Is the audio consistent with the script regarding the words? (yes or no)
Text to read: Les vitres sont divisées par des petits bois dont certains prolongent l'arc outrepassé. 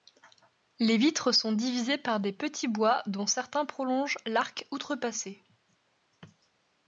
yes